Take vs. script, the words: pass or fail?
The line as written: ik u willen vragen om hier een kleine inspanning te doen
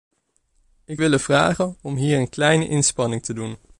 pass